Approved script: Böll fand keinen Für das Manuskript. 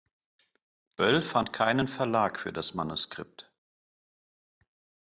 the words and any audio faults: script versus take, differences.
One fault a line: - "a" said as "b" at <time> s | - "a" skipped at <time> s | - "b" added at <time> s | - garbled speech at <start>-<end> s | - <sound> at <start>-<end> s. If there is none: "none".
- "Verlag" added at 1.9 s